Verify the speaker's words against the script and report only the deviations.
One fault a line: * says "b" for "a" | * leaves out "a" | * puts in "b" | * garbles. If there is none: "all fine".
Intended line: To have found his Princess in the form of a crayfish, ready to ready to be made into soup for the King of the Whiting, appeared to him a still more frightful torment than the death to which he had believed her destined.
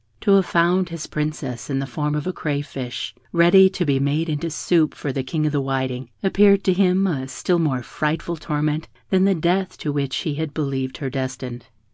* leaves out "ready to"